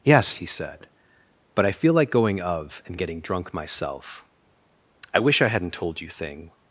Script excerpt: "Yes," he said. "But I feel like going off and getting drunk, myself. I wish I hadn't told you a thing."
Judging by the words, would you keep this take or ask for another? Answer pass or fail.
fail